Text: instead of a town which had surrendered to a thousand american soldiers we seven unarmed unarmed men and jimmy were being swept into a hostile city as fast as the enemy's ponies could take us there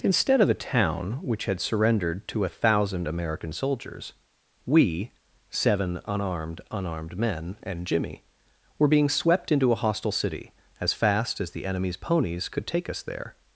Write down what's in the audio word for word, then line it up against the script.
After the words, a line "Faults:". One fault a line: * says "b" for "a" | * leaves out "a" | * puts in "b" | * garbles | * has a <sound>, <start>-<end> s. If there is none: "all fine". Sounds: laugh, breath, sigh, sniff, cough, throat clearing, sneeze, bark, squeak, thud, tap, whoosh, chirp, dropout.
instead of a town which had surrendered to a thousand american soldiers we seven unarmed unarmed men and jimmy were being swept into a hostile city as fast as the enemy's ponies could take us there
Faults:
all fine